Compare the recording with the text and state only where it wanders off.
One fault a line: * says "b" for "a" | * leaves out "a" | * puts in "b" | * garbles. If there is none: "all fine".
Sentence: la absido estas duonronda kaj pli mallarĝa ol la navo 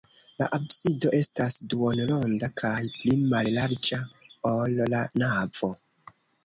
all fine